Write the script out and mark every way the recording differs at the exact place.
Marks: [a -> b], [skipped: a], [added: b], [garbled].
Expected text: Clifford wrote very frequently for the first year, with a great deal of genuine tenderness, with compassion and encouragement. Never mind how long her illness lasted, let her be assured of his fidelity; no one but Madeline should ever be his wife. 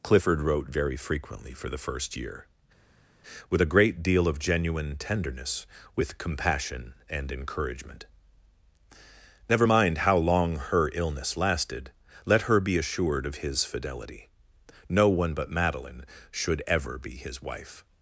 Clifford wrote very frequently for the first year, with a great deal of genuine tenderness, with compassion and encouragement. Never mind how long her illness lasted, let her be assured of his fidelity; no one but Madeline should ever be his wife.